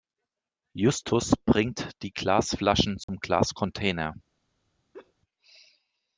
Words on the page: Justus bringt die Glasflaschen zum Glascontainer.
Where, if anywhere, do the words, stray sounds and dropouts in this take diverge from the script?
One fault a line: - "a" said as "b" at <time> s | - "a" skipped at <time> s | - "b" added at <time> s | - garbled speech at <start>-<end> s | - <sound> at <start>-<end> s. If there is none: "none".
- dropout at 3.0-3.1 s
- laugh at 4.9-5.1 s